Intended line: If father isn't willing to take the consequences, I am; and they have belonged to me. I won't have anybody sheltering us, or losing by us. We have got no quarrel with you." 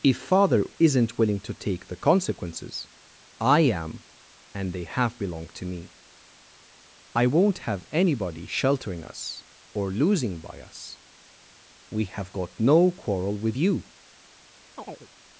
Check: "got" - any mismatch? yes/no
no